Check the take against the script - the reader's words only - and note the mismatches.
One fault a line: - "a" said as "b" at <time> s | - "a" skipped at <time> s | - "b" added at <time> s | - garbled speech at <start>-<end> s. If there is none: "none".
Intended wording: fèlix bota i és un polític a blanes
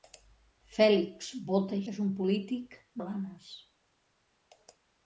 none